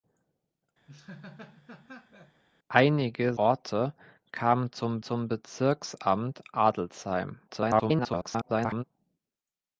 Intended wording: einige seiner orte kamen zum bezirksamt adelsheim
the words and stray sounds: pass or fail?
fail